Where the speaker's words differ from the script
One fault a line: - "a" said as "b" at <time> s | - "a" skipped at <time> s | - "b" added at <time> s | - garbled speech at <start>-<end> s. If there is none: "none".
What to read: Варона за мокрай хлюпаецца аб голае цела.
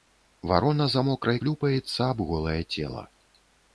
none